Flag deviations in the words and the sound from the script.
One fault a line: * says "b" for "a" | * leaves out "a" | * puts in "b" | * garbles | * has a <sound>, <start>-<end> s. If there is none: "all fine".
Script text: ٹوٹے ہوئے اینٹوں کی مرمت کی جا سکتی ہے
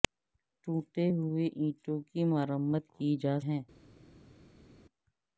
* leaves out "سکتی"